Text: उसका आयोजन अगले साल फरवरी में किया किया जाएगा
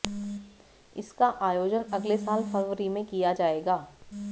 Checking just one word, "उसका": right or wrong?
wrong